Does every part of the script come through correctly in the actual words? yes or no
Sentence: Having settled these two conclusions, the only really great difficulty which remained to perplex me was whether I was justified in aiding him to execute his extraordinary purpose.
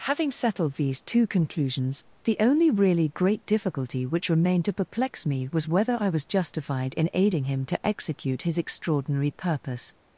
yes